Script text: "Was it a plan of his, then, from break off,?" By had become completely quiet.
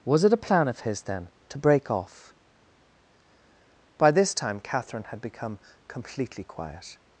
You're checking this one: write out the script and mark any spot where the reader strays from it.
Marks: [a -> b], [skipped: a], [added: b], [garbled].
"Was it a plan of his, then, [from -> to] break off,?" By [added: this time Catherine] had become completely quiet.